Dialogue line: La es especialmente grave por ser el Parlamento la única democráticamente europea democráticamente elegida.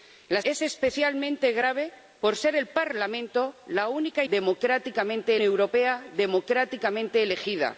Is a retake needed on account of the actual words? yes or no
no